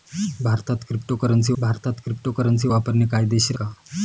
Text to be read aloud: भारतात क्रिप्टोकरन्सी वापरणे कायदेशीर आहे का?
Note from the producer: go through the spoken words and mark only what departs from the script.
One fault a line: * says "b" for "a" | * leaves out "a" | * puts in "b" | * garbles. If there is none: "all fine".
* puts in "भारतात क्रिप्टोकरन्सी"
* leaves out "आहे"